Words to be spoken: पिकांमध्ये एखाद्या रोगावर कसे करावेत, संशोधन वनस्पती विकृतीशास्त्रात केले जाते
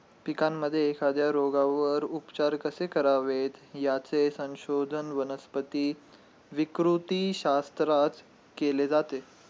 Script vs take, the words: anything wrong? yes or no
yes